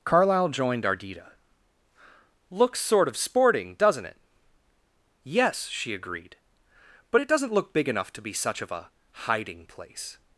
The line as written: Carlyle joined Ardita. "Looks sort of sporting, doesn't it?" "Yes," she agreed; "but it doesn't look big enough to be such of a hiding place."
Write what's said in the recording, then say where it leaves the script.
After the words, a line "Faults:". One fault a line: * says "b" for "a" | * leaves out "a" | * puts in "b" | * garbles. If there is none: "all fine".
Carlyle joined Ardita. "Looks sort of sporting, doesn't it?" "Yes," she agreed; "but it doesn't look big enough to be such of a hiding place."
Faults:
all fine